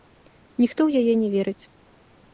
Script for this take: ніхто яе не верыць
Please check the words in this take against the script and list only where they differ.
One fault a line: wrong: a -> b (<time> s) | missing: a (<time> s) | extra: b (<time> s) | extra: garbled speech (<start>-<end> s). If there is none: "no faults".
extra: ў (0.9 s)